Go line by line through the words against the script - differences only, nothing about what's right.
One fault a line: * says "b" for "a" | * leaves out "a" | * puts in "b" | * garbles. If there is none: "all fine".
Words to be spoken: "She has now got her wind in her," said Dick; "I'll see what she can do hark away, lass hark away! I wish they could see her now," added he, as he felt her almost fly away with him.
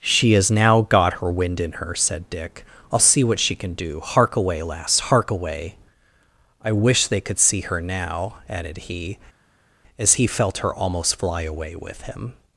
all fine